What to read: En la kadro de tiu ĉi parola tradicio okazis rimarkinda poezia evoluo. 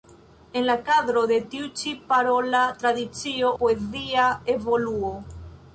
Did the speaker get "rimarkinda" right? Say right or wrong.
wrong